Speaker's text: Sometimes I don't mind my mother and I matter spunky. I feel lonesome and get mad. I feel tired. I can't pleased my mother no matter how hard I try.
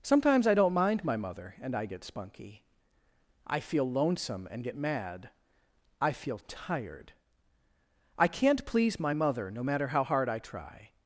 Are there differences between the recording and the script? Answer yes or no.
yes